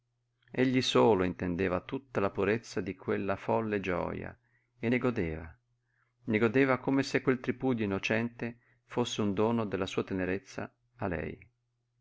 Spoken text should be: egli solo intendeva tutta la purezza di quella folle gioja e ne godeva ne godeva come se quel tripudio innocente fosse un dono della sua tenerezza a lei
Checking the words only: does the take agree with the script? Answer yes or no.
yes